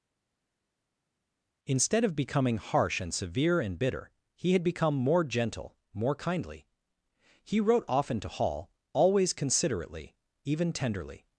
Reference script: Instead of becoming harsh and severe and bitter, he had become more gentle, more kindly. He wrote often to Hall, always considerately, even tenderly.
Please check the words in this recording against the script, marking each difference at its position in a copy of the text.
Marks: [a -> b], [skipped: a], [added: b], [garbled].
Instead of becoming harsh and severe and bitter, he had become more gentle, more kindly. He wrote often to Hall, always considerately, even tenderly.